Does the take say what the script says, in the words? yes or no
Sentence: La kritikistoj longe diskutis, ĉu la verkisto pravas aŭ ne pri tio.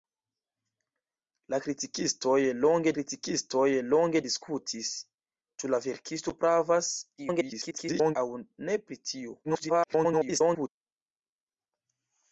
no